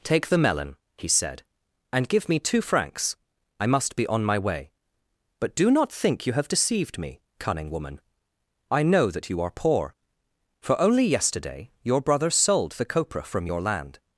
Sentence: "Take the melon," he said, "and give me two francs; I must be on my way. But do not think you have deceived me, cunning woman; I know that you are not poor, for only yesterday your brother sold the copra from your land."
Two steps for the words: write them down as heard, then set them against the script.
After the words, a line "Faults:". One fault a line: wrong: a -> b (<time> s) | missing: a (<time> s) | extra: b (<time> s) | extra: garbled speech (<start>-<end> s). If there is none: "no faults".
"Take the melon," he said, "and give me two francs; I must be on my way. But do not think you have deceived me, cunning woman; I know that you are poor, for only yesterday your brother sold the copra from your land."
Faults:
missing: not (9.5 s)